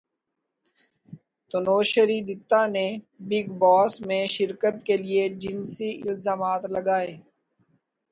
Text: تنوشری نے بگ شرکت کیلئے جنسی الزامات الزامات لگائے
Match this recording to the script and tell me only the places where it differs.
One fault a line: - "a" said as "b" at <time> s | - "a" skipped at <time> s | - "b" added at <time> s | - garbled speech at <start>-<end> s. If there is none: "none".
- "دتہ" added at 2.3 s
- "باس میں" added at 3.6 s
- "الزامات" skipped at 6.6 s